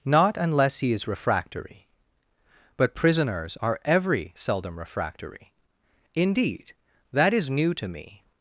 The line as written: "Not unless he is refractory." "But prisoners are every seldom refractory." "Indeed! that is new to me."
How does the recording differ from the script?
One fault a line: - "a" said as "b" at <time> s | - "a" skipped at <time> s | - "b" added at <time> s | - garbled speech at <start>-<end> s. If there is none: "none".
none